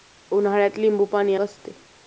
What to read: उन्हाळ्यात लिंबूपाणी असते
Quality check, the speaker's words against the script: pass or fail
pass